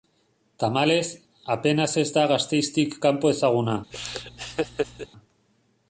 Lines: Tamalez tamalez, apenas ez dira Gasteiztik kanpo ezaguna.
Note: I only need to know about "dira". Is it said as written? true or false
false